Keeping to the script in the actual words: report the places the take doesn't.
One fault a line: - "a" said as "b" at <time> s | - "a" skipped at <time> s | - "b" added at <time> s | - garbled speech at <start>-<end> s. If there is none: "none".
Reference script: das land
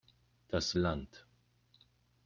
none